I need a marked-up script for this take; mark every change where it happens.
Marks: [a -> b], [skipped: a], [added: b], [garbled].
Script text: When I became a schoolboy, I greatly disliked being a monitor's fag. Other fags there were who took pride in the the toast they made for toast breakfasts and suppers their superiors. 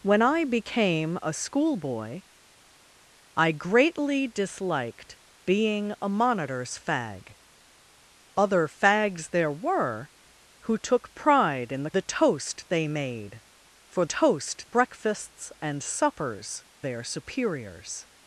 When I became a schoolboy, I greatly disliked being a monitor's fag. Other fags there were who took pride in the the toast they made for toast breakfasts and suppers their superiors.